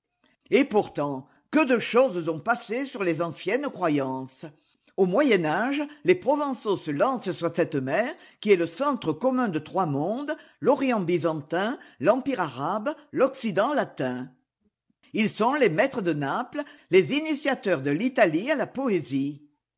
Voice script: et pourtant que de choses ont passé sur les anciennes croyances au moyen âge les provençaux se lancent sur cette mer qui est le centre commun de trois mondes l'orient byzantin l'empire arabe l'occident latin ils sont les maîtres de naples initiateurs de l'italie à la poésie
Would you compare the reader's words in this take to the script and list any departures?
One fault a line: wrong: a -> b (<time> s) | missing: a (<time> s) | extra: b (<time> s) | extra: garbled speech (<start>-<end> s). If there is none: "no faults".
extra: les (16.9 s)